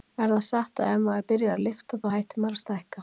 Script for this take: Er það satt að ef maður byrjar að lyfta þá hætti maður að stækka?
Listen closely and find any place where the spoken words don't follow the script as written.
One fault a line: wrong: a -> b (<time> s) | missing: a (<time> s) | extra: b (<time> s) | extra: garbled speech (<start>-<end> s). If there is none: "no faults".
no faults